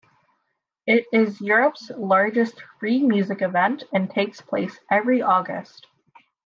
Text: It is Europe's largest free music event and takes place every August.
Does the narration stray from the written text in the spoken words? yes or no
no